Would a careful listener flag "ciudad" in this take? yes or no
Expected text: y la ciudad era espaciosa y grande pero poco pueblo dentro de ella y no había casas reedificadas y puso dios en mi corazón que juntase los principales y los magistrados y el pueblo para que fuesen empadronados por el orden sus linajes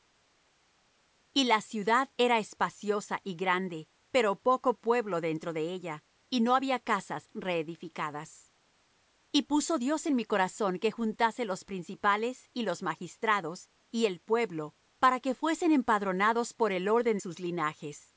no